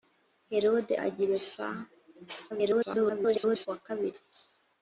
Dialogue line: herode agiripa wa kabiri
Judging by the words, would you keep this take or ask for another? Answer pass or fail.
fail